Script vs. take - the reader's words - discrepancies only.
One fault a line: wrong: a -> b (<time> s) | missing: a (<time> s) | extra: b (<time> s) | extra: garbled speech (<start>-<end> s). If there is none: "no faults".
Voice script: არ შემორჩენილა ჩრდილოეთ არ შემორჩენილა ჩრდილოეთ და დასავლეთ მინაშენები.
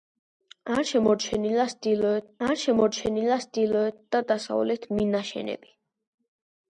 no faults